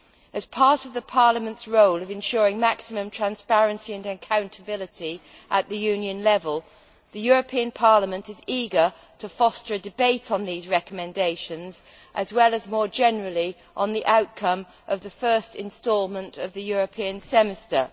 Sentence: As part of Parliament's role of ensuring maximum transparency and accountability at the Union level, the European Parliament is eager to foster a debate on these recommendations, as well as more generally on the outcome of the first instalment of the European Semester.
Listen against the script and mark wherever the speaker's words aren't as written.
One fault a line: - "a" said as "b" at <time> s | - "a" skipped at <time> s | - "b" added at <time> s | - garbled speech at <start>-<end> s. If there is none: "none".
none